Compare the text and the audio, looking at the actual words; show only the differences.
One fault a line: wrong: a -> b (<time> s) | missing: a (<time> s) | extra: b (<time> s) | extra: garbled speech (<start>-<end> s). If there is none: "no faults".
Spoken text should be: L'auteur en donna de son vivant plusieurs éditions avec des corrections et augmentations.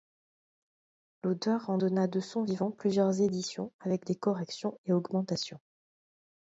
no faults